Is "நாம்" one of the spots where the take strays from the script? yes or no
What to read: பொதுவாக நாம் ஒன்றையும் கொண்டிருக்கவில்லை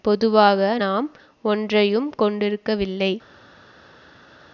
no